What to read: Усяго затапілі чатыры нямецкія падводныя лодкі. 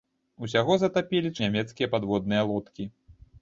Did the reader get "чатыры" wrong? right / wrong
wrong